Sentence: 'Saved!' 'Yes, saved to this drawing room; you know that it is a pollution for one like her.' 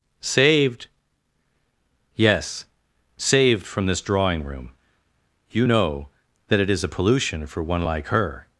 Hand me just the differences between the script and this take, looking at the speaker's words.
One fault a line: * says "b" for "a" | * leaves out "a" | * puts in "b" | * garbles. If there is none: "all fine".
* says "from" for "to"